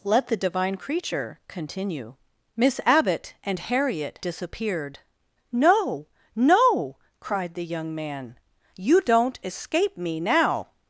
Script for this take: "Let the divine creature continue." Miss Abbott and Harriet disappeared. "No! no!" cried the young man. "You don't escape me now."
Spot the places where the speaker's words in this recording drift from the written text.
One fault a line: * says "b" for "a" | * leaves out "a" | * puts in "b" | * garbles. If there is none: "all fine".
all fine